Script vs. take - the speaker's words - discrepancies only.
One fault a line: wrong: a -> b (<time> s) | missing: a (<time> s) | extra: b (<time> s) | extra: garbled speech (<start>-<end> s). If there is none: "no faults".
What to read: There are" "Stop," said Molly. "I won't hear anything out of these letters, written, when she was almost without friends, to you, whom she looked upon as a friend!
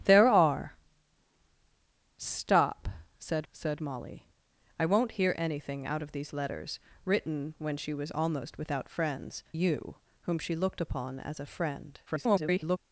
extra: said (3.5 s)
missing: to (9.4 s)
extra: garbled speech (12.1-12.8 s)